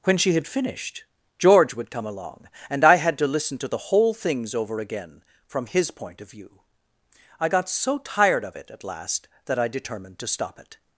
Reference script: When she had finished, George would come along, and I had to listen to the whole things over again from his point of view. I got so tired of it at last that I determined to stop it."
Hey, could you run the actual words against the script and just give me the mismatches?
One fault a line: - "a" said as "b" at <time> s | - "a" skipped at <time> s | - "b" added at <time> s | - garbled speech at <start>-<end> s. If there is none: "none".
none